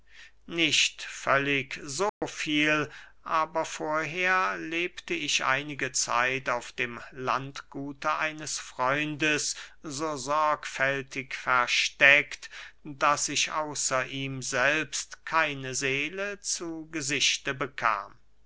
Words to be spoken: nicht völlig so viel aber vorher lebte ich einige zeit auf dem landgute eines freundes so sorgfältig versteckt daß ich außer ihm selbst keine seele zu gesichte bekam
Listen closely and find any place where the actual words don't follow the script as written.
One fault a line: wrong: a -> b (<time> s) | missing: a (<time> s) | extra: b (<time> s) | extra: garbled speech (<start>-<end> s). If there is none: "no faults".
no faults